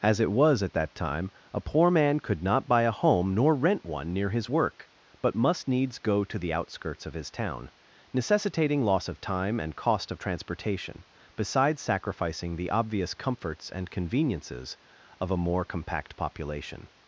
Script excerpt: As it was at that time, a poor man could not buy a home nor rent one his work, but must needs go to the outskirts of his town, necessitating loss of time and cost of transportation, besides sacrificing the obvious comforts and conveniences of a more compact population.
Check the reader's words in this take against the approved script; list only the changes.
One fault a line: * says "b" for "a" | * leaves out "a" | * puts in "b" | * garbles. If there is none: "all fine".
* puts in "near"